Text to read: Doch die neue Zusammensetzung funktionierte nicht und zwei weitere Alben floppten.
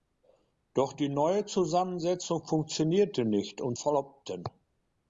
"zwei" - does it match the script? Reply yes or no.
no